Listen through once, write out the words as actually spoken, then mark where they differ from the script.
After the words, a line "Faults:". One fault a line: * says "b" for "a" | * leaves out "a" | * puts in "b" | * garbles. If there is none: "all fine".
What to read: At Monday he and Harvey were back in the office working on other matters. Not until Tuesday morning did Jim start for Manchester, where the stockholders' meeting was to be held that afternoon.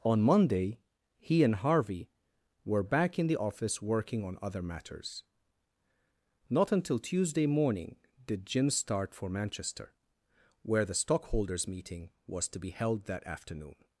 On Monday he and Harvey were back in the office working on other matters. Not until Tuesday morning did Jim start for Manchester, where the stockholders' meeting was to be held that afternoon.
Faults:
* says "On" for "At"